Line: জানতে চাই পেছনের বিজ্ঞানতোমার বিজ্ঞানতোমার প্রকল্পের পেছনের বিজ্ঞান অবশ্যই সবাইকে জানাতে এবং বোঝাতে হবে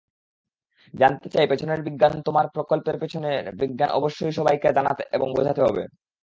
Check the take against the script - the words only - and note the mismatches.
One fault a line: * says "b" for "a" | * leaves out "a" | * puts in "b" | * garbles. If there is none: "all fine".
* leaves out "বিজ্ঞানতোমার"